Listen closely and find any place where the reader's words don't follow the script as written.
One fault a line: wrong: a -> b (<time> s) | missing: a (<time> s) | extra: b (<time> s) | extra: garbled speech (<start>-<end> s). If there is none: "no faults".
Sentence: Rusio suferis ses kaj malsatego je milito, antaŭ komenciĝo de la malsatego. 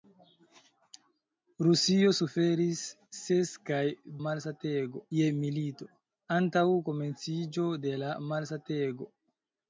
no faults